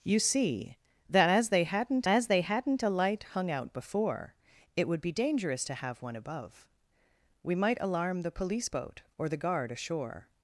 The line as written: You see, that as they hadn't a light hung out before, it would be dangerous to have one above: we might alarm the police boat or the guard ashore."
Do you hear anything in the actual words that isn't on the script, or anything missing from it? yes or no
yes